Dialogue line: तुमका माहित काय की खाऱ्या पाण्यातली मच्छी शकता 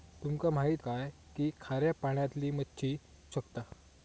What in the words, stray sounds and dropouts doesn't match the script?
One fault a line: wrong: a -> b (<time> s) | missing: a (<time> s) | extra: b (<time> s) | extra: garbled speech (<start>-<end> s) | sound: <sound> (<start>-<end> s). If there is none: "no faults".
no faults